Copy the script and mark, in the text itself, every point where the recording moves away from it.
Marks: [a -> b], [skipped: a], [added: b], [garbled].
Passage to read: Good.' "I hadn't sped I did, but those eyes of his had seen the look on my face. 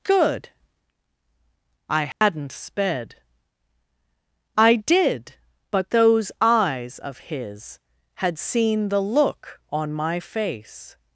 Good.' "I hadn't sped I did, but those eyes of his had seen the look on my face.